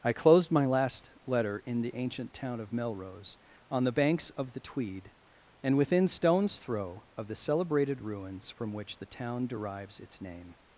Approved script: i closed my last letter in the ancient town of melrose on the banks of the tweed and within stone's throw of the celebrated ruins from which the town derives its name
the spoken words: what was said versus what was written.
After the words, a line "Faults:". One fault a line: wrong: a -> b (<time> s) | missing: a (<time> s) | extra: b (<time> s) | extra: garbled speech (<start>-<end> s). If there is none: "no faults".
i closed my last letter in the ancient town of melrose on the banks of the tweed and within stone's throw of the celebrated ruins from which the town derives its name
Faults:
no faults